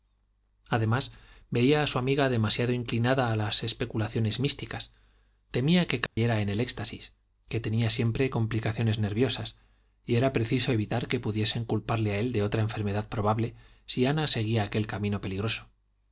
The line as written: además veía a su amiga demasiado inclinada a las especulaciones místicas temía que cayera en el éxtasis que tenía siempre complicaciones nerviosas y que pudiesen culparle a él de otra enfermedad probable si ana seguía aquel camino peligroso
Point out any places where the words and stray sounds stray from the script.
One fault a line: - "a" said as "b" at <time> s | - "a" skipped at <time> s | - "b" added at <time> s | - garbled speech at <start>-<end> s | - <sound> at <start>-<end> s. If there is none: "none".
- dropout at 6.1-6.2 s
- "era preciso evitar" added at 10.2 s